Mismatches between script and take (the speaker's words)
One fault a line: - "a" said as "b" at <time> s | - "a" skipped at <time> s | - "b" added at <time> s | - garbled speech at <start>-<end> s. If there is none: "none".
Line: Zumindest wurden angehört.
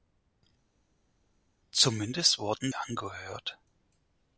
none